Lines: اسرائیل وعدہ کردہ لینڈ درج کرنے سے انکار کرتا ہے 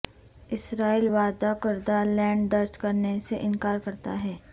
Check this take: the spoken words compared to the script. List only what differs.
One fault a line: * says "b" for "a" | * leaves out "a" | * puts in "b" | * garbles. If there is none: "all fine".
all fine